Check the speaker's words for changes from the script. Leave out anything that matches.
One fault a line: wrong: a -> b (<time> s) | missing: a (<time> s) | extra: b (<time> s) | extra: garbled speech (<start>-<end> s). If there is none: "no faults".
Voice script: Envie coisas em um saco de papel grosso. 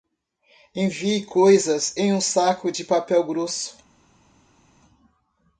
no faults